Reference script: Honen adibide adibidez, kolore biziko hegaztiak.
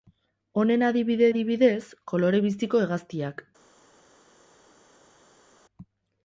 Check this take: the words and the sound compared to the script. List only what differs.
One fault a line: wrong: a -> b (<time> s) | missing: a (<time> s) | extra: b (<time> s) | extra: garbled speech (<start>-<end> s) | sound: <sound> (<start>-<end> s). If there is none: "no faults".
no faults